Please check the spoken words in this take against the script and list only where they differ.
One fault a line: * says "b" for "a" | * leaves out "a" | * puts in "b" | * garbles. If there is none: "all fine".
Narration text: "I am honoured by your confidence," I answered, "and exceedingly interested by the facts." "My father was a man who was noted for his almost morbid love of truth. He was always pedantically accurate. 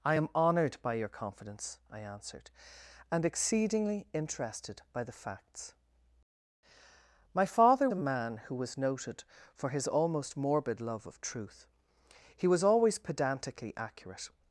* leaves out "was"